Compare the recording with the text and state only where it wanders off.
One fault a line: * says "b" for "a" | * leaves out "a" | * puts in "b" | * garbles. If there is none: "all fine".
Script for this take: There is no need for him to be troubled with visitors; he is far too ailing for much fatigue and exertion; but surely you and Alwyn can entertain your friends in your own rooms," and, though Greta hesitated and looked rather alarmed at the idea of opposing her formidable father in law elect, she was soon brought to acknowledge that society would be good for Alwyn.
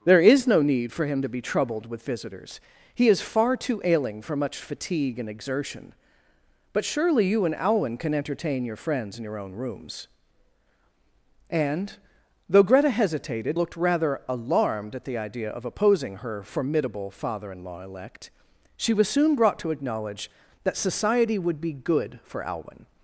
* leaves out "and"